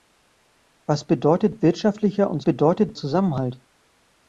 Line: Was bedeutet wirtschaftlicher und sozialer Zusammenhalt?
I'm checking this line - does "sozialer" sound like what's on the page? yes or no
no